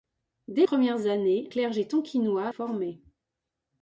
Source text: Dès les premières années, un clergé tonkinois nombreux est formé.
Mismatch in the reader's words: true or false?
true